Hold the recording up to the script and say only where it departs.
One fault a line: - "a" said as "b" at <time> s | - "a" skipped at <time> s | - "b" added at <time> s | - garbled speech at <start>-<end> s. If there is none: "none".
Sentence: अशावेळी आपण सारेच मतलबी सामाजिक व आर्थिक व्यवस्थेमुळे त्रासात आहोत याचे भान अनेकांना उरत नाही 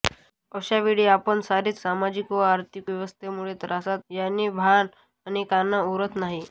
- "मतलबी" skipped at 1.8 s
- "आहोत" skipped at 4.0 s